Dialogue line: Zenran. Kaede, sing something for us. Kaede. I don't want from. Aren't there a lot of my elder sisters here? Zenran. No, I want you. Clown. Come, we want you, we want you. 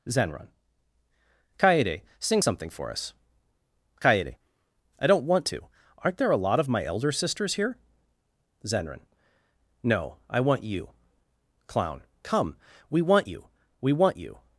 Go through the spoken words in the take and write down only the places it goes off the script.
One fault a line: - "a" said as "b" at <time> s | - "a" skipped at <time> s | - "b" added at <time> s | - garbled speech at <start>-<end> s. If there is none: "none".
- "from" said as "to" at 5.5 s